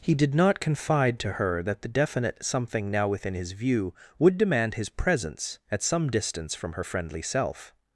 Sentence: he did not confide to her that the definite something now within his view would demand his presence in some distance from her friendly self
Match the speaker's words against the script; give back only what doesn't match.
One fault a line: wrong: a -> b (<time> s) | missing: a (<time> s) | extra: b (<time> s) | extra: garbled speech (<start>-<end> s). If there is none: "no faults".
wrong: in -> at (5.7 s)